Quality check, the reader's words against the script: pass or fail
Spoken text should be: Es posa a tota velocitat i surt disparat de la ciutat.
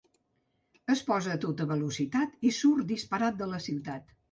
pass